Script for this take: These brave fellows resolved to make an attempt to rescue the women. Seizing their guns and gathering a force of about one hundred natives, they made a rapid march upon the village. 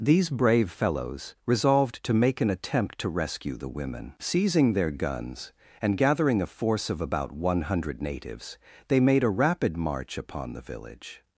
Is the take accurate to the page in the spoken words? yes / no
yes